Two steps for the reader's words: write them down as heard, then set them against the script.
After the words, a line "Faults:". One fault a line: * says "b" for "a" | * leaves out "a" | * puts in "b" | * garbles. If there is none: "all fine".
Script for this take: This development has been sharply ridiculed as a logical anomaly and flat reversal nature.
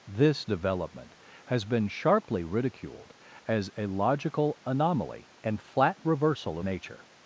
This development has been sharply ridiculed as a logical anomaly and flat reversal nature.
Faults:
all fine